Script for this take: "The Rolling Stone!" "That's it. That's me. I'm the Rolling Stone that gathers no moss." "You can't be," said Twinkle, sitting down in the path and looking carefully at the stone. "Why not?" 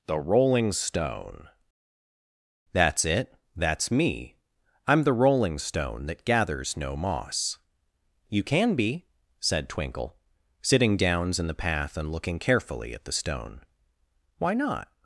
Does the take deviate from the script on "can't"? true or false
true